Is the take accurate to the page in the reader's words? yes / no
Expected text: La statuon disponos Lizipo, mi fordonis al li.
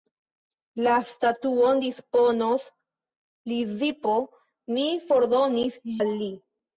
yes